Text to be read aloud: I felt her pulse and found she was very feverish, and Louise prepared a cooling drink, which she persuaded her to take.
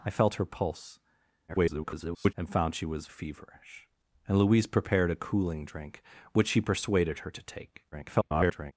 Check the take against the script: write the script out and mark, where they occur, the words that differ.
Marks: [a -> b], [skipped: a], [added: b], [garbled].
I felt her pulse [garbled] and found she was [skipped: very] feverish, and Louise prepared a cooling drink, which she persuaded her to take. [garbled]